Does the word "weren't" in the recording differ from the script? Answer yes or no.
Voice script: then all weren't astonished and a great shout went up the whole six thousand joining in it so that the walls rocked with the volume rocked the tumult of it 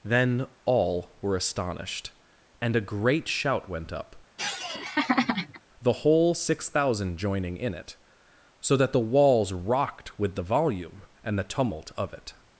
yes